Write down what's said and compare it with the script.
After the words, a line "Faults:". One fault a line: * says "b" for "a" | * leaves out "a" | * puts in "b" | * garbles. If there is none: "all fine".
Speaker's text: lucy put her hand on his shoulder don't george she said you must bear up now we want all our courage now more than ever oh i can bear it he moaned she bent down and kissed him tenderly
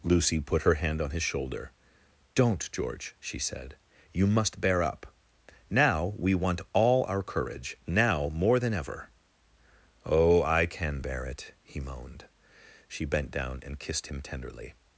lucy put her hand on his shoulder don't george she said you must bear up now we want all our courage now more than ever oh i can bear it he moaned she bent down and kissed him tenderly
Faults:
all fine